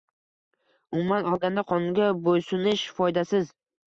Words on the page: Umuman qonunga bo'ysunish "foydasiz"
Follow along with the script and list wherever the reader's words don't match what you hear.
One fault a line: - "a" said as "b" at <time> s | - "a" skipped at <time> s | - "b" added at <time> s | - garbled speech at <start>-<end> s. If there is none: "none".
- "olganda" added at 1.3 s